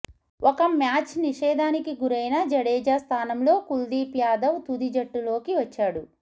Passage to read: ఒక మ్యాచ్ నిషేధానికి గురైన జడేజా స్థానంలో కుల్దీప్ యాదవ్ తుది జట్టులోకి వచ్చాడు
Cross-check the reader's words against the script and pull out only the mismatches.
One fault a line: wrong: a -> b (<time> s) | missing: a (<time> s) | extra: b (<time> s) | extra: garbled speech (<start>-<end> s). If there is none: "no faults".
no faults